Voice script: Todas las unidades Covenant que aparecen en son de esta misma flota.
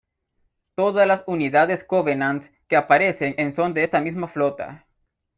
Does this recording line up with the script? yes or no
yes